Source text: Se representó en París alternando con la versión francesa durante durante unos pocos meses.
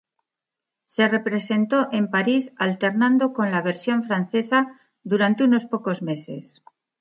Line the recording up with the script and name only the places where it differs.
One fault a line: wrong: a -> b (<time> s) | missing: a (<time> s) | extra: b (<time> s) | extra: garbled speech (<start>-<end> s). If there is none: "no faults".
missing: durante (5.4 s)